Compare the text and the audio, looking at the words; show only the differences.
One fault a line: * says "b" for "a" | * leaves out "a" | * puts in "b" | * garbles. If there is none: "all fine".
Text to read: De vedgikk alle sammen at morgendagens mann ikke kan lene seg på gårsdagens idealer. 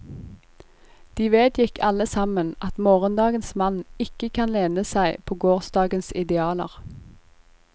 all fine